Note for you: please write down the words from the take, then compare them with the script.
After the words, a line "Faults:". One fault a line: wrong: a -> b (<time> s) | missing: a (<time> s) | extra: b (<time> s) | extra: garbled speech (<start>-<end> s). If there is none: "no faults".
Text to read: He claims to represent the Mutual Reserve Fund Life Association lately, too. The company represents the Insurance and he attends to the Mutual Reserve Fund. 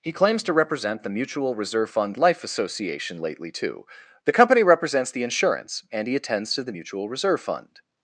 He claims to represent the Mutual Reserve Fund Life Association lately, too. The company represents the Insurance and he attends to the Mutual Reserve Fund.
Faults:
no faults